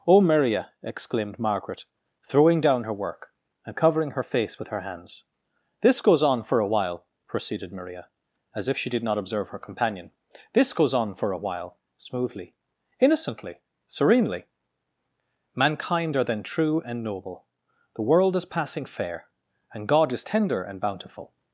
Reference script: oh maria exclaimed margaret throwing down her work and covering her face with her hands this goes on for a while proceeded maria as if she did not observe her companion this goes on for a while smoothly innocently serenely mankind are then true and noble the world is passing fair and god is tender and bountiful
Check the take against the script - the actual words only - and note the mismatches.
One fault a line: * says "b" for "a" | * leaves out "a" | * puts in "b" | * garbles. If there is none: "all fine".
all fine